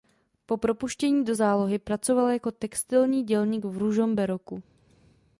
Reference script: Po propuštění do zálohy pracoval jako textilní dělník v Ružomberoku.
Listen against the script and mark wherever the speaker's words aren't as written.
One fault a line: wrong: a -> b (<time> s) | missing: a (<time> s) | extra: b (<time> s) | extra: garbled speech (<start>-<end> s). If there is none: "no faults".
no faults